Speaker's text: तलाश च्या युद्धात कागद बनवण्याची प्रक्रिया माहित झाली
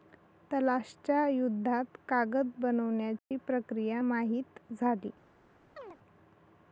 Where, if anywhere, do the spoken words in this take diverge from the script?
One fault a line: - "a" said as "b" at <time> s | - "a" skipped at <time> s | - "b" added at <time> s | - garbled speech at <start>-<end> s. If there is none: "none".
none